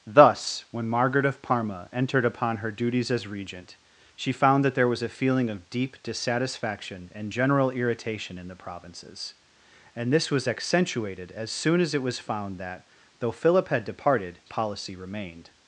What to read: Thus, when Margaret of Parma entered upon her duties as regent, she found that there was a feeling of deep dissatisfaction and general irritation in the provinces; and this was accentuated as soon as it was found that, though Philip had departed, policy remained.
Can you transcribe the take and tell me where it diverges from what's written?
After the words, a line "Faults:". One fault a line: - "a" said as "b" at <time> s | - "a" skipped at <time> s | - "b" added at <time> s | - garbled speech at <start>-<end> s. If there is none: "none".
Thus, when Margaret of Parma entered upon her duties as regent, she found that there was a feeling of deep dissatisfaction and general irritation in the provinces; and this was accentuated as soon as it was found that, though Philip had departed, policy remained.
Faults:
none